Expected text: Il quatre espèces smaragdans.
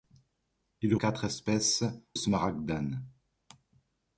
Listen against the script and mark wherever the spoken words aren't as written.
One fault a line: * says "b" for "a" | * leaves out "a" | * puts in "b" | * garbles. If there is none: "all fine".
all fine